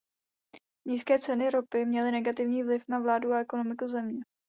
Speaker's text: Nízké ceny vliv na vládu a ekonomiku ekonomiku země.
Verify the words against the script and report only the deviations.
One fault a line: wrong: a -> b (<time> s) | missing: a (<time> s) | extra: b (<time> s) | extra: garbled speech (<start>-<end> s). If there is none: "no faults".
extra: ropy měly negativní (1.5 s)
missing: ekonomiku (3.9 s)